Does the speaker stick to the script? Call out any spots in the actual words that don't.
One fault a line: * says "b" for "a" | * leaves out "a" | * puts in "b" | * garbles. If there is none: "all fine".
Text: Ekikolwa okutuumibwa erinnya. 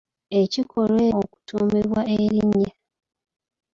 all fine